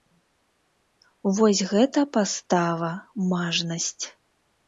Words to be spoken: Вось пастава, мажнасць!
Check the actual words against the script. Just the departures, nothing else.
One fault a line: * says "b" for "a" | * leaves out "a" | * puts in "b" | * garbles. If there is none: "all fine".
* puts in "гэта"